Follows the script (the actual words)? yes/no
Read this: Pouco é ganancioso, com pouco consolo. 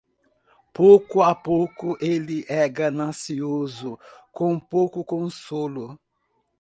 no